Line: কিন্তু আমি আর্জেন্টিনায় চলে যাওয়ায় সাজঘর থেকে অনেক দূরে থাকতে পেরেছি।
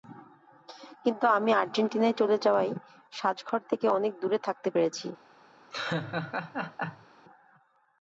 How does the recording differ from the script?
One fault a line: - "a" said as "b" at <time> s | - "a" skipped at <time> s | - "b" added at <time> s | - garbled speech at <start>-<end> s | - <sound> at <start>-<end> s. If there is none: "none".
- laugh at 5.7-7.1 s